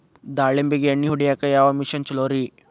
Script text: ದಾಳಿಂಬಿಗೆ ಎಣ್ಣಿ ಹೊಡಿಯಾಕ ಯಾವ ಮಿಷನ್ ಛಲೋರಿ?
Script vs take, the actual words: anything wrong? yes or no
no